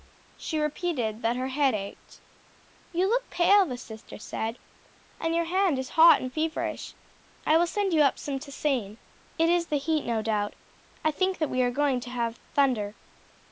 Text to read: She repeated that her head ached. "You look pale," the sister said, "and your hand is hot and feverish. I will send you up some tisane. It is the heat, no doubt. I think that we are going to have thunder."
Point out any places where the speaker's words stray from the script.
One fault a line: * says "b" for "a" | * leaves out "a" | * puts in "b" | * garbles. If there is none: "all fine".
all fine